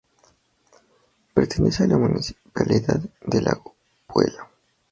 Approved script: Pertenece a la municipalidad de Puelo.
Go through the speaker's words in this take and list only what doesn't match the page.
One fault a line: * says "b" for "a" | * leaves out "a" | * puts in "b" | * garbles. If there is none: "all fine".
* puts in "Lago"